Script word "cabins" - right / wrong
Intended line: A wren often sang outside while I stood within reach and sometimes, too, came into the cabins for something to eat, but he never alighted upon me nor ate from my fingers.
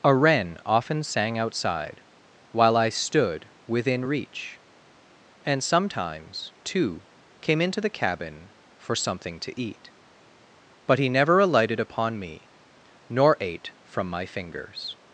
wrong